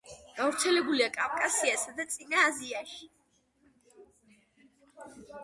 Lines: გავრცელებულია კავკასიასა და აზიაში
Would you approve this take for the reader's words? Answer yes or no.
no